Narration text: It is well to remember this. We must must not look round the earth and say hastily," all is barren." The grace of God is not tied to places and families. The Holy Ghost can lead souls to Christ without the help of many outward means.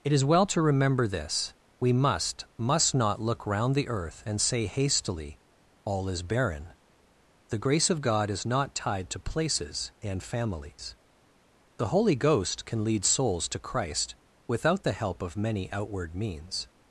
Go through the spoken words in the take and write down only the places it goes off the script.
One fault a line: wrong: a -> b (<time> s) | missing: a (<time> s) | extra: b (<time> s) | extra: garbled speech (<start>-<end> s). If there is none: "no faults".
no faults